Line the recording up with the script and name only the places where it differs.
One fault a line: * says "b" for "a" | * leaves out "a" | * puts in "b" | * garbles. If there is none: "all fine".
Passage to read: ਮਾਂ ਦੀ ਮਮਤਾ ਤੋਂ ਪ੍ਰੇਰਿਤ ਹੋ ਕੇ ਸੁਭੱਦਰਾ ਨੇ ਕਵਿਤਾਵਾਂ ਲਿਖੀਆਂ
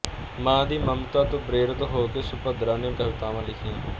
all fine